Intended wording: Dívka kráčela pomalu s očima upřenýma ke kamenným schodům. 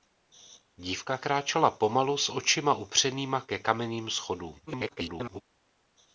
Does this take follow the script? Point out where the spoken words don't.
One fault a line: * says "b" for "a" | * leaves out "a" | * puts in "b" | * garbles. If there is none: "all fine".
* garbles